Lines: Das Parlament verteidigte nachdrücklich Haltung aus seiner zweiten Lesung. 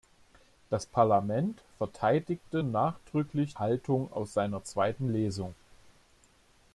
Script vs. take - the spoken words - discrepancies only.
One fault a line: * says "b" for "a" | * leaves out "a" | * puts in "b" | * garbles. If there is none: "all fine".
all fine